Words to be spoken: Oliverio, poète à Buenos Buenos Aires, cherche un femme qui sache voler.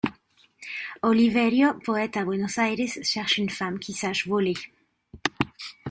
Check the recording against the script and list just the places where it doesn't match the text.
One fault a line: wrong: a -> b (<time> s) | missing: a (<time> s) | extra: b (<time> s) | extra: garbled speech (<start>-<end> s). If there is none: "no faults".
missing: Buenos (2.6 s)
wrong: un -> une (3.4 s)